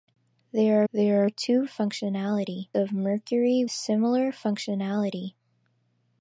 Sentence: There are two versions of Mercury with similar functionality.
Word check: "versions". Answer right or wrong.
wrong